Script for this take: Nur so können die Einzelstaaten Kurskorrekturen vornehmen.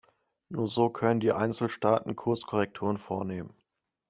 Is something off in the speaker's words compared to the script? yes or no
no